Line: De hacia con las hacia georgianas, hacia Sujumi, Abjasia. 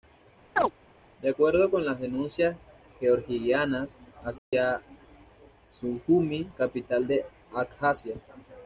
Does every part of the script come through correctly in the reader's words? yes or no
no